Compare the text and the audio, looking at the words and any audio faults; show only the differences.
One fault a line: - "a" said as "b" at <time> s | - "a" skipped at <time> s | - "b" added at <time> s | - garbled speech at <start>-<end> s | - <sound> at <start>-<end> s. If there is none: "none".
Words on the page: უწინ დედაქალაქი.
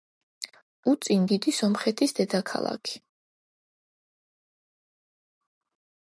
- "დიდი სომხეთის" added at 1.3 s